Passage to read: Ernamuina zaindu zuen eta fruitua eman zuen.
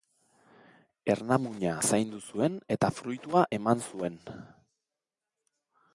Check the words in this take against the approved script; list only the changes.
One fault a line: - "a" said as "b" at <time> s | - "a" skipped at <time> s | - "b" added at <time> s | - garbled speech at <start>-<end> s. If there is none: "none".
none